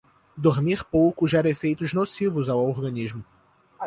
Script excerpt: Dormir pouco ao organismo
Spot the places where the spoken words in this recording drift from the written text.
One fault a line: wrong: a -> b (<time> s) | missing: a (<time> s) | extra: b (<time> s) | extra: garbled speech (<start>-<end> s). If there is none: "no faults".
extra: gera efeitos nocivos (1.3 s)